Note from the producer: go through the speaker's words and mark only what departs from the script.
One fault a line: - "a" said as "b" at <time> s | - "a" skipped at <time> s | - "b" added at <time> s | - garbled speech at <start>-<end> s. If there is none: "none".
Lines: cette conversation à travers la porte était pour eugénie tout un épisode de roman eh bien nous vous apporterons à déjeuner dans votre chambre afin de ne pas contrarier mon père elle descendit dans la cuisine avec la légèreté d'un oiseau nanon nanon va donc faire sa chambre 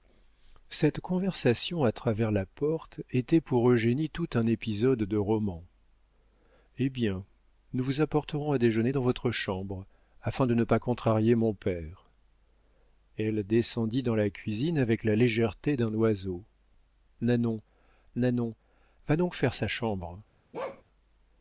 none